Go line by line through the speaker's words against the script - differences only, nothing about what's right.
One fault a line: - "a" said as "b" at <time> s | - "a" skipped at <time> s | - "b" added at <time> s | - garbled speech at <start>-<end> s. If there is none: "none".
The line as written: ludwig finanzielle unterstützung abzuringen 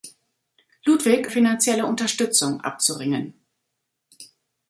none